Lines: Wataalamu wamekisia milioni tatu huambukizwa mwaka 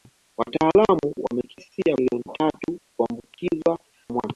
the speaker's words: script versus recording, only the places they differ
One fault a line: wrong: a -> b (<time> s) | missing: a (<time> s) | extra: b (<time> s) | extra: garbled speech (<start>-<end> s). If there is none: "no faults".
no faults